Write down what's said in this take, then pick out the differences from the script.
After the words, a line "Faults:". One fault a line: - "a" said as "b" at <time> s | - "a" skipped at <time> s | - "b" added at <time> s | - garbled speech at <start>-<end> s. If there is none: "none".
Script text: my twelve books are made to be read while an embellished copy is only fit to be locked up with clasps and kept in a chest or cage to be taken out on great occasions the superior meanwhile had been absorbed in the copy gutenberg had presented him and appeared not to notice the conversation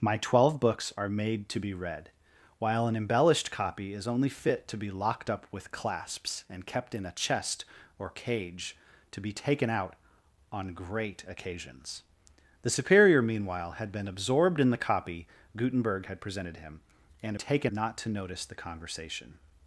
my twelve books are made to be read while an embellished copy is only fit to be locked up with clasps and kept in a chest or cage to be taken out on great occasions the superior meanwhile had been absorbed in the copy gutenberg had presented him and taken not to notice the conversation
Faults:
- "appeared" said as "taken" at 17.3 s